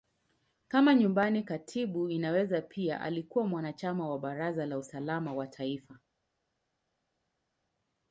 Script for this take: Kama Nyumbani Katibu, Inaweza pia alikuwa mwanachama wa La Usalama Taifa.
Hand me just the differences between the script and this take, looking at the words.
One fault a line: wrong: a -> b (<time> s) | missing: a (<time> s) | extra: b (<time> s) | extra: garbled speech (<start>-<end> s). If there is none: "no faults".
extra: Baraza (4.2 s)
extra: wa (5.3 s)